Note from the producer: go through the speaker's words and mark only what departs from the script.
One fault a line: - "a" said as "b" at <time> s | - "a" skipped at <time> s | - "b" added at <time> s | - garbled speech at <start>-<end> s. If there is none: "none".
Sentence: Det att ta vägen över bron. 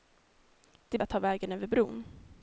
none